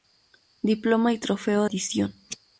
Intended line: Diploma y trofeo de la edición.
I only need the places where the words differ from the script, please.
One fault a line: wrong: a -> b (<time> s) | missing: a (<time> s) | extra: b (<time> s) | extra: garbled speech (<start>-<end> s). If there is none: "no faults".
missing: de la (1.6 s)